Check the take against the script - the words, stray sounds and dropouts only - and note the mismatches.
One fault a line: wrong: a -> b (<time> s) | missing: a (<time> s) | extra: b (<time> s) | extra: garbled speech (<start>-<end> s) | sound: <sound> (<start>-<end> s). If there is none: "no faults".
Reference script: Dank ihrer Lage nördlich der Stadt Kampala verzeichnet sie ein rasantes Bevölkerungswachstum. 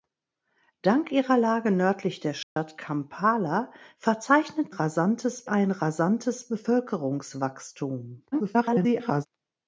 sound: dropout (2.4-2.6 s)
wrong: sie -> rasantes (4.7 s)
extra: garbled speech (8.3-9.3 s)